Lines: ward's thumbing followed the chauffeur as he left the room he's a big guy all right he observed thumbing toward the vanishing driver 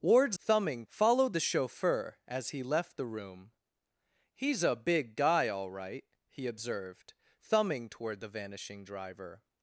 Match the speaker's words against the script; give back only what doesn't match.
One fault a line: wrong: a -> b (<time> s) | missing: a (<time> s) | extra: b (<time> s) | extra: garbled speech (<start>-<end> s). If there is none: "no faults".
no faults